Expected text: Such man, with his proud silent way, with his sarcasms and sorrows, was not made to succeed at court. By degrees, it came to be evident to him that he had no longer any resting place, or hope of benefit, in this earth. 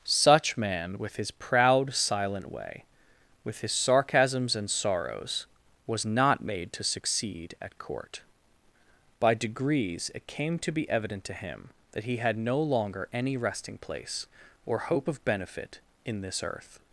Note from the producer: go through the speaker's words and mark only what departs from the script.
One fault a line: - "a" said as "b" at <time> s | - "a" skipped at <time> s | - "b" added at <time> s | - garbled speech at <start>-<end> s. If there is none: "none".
none